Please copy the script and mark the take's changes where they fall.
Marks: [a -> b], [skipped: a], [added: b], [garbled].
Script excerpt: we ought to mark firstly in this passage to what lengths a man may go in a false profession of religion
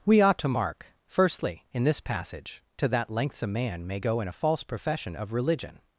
we ought to mark firstly in this passage to [what -> that] lengths a man may go in a false profession of religion